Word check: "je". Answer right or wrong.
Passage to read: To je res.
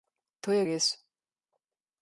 right